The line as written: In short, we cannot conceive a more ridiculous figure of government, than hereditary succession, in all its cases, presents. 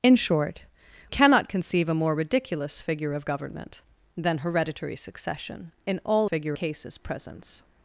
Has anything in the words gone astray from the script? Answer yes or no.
yes